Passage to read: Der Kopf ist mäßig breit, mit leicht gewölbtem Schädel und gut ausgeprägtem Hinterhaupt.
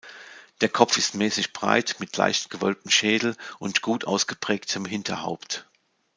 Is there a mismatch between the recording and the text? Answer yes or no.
no